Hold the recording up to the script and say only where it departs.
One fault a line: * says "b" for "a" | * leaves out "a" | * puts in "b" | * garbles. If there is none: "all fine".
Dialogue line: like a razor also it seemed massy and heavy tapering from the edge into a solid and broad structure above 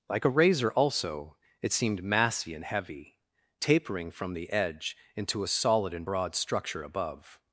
all fine